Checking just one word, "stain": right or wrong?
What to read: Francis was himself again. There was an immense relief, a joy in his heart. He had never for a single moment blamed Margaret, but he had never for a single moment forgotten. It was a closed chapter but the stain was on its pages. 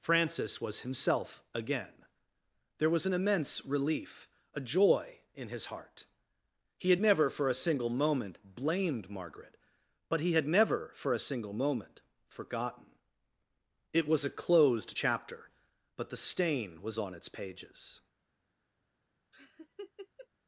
right